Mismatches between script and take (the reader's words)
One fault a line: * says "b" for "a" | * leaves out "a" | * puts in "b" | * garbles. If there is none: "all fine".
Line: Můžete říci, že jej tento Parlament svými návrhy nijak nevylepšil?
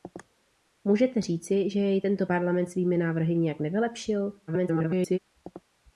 * garbles